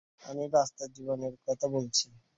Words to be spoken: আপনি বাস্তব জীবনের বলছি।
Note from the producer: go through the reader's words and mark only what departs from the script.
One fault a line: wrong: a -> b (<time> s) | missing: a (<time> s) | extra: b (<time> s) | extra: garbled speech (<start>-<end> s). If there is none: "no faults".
wrong: আপনি -> আমি (0.2 s)
extra: কথা (1.5 s)